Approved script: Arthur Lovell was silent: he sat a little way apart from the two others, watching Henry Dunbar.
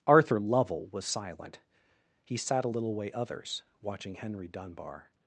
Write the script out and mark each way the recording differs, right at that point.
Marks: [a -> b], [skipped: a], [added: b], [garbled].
Arthur Lovell was silent: he sat a little way [skipped: apart from the two] others, watching Henry Dunbar.